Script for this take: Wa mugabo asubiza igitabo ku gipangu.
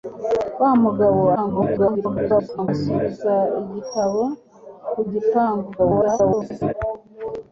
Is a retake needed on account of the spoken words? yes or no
yes